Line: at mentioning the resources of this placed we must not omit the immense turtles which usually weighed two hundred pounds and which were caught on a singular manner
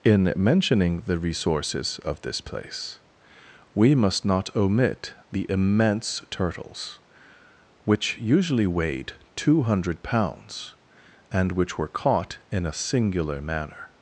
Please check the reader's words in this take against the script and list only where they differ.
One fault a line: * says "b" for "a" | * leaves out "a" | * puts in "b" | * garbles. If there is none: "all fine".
* says "in" for "at"
* says "place" for "placed"
* says "in" for "on"